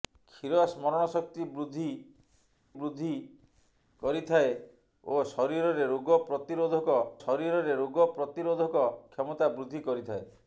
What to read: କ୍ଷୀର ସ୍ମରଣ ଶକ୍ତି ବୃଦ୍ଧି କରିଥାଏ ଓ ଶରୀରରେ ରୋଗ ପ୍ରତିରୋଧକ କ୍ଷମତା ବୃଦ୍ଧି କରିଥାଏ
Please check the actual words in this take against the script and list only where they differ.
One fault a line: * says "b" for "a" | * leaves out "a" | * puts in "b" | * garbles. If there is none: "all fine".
* puts in "ବୃଦ୍ଧି"
* puts in "ଶରୀରରେ ରୋଗ ପ୍ରତିରୋଧକ"